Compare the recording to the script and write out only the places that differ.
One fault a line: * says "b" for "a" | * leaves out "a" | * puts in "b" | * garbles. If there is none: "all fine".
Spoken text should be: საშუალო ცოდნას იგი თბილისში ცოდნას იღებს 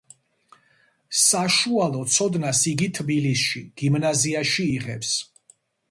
* says "გიმნაზიაში" for "ცოდნას"